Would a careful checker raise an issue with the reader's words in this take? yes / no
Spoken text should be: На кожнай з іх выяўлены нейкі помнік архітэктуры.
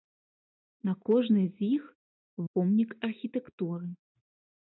yes